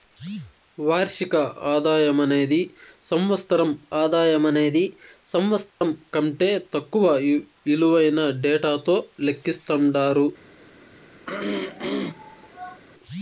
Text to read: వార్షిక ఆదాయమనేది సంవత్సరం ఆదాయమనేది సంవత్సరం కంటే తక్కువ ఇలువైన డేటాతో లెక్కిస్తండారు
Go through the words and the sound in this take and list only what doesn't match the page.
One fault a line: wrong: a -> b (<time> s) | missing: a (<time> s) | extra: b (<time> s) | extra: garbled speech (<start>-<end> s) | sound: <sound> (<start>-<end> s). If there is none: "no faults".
sound: dropout (5.7-5.8 s)
sound: throat clearing (11.2-12.8 s)